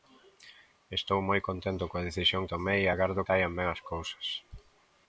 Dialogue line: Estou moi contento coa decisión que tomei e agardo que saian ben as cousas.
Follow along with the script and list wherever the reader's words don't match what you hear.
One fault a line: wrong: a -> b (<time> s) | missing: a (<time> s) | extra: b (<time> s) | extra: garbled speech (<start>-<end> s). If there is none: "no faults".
missing: que (2.4 s)
missing: que (3.3 s)